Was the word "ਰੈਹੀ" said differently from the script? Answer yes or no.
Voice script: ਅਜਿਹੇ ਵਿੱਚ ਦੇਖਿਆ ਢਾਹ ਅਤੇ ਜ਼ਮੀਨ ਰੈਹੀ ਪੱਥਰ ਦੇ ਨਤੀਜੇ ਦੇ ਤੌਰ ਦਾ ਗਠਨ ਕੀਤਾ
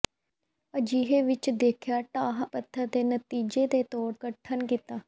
yes